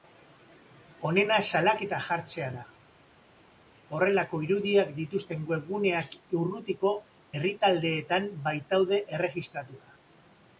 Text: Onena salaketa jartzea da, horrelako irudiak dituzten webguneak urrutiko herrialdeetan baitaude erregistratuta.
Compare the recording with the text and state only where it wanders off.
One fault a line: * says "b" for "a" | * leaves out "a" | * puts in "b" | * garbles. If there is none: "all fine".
all fine